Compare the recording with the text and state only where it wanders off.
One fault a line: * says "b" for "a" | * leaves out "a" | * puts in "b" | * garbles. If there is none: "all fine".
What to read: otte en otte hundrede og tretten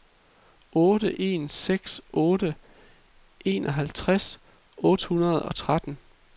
* puts in "seks otte enoghalvtreds"